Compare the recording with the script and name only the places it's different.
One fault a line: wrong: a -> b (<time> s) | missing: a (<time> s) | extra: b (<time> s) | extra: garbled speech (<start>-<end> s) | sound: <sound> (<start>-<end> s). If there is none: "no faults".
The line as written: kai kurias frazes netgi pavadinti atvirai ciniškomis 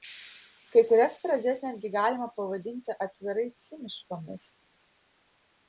extra: galima (1.9 s)